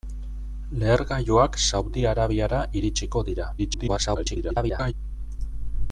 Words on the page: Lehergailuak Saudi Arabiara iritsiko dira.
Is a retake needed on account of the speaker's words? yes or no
yes